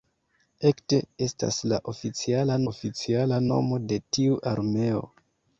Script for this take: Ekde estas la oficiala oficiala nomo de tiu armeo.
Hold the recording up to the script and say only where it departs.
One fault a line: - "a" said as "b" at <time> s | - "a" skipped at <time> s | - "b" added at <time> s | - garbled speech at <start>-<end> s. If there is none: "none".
none